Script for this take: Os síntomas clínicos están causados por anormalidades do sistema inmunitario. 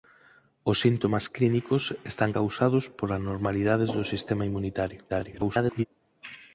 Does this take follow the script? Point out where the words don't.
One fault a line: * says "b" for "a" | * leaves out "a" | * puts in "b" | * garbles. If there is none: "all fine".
* garbles